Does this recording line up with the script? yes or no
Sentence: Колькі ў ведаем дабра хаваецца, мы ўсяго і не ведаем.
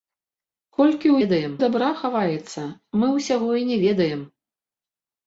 yes